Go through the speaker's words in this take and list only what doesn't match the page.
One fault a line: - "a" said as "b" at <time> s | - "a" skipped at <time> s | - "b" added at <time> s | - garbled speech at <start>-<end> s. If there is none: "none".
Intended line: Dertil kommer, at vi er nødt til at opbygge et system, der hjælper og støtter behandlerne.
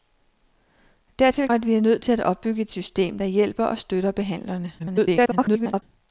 - "kommer" skipped at 1.5 s
- garbled speech at 4.8-5.8 s